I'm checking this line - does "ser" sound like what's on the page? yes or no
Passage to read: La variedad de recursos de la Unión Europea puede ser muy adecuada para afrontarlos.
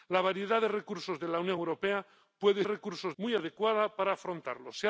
no